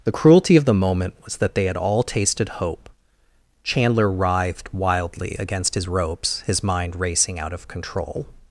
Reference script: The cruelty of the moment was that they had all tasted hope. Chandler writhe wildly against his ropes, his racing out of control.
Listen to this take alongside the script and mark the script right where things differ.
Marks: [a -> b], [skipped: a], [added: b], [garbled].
The cruelty of the moment was that they had all tasted hope. Chandler [writhe -> writhed] wildly against his ropes, his [added: mind] racing out of control.